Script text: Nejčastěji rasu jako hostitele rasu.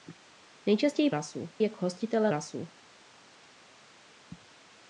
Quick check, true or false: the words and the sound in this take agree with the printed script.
true